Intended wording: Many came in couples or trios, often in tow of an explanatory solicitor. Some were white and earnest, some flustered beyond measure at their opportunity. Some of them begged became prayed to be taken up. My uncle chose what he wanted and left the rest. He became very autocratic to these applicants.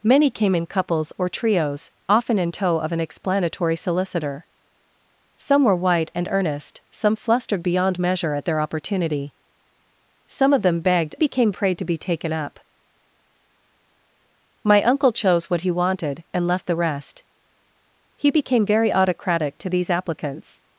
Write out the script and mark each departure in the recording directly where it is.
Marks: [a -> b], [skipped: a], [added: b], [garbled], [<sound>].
Many came in couples or trios, often in tow of an explanatory solicitor. Some were white and earnest, some flustered beyond measure at their opportunity. Some of them begged became prayed to be taken up. My uncle chose what he wanted and left the rest. He became very autocratic to these applicants.